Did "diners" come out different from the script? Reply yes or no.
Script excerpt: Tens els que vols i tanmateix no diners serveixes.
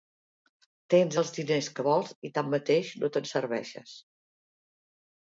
yes